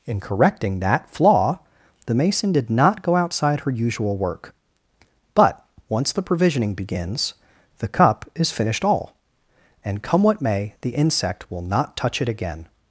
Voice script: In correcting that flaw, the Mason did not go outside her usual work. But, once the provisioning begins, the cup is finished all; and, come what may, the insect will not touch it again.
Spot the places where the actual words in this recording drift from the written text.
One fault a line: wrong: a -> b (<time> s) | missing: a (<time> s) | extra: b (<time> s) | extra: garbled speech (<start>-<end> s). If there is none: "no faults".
no faults